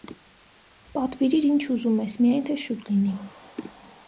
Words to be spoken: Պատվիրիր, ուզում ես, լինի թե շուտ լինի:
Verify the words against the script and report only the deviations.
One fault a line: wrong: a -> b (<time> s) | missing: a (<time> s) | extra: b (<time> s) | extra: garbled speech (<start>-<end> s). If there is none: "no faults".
extra: ինչ (1.5 s)
wrong: լինի -> միայն (2.2 s)